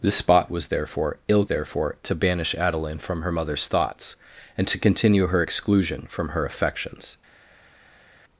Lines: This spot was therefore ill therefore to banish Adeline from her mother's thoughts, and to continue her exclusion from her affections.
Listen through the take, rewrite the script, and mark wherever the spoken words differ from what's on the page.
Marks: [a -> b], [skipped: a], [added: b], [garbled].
This spot was therefore ill therefore to banish Adeline from her mother's thoughts, and to continue her exclusion from her affections.